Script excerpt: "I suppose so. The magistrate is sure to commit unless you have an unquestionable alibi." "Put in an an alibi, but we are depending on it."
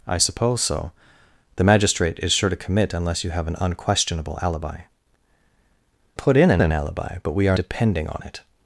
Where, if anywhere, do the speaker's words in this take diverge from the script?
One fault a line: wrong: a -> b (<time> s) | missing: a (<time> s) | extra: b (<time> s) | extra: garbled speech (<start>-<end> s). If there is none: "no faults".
no faults